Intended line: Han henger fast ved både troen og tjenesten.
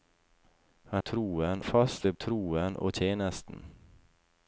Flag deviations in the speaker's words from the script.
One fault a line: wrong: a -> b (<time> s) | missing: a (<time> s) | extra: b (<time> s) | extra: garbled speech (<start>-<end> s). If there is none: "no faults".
wrong: henger -> troen (1.0 s)
missing: både (2.1 s)